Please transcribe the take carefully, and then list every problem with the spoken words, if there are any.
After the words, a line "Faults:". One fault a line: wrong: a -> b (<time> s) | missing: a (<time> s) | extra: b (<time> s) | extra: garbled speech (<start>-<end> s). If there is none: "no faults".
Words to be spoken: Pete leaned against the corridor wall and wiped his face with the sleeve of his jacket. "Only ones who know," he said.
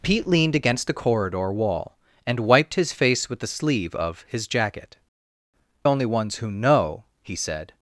Pete leaned against the corridor wall and wiped his face with the sleeve of his jacket. "Only ones who know," he said.
Faults:
no faults